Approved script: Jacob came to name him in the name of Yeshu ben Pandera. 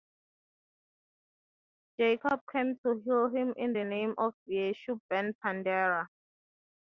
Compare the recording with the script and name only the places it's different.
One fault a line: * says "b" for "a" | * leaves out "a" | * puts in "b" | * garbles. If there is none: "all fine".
* says "heal" for "name"